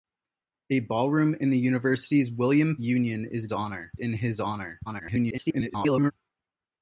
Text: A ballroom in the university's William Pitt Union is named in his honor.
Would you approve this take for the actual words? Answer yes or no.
no